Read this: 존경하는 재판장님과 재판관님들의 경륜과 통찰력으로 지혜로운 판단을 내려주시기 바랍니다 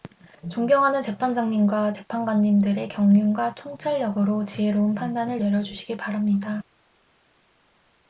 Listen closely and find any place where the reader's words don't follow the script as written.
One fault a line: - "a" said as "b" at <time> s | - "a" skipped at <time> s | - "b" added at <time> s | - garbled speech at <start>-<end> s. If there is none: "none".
none